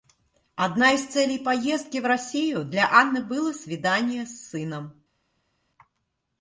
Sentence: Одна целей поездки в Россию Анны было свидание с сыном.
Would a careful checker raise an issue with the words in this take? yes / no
yes